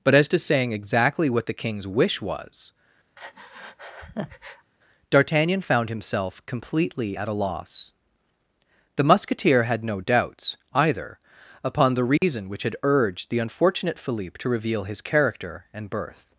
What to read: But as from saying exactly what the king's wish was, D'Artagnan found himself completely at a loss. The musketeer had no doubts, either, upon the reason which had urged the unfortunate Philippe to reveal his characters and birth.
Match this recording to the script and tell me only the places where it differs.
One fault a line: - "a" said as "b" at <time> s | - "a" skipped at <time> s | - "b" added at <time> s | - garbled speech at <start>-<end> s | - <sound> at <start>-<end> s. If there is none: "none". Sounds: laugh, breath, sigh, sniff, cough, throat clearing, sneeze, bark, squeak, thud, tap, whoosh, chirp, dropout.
- "from" said as "to" at 0.3 s
- breath at 3.2-4.7 s
- dropout at 12.2-12.2 s
- "characters" said as "character" at 15.0 s